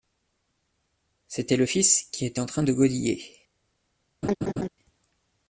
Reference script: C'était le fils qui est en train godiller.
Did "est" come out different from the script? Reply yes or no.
yes